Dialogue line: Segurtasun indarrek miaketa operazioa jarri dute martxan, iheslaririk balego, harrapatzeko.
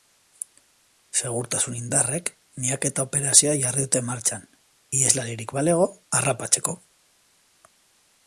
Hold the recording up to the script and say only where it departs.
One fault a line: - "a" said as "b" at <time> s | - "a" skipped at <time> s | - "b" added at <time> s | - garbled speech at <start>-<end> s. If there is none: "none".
none